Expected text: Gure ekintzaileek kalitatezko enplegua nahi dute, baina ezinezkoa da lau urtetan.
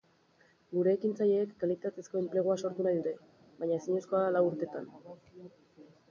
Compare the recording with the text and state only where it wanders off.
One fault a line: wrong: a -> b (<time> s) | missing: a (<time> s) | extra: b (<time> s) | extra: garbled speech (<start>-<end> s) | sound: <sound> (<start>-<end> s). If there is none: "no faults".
extra: sortu (2.6 s)